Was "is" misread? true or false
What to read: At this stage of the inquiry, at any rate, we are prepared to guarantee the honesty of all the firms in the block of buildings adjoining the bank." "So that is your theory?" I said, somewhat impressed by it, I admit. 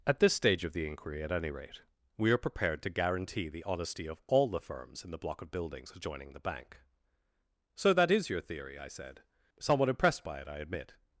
false